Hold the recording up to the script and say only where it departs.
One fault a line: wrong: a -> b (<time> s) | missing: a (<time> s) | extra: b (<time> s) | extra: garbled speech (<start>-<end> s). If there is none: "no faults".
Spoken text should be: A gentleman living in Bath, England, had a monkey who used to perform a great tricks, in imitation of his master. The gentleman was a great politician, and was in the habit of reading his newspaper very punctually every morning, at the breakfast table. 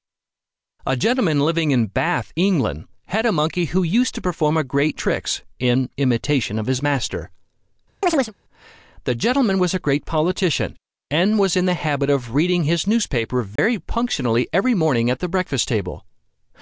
no faults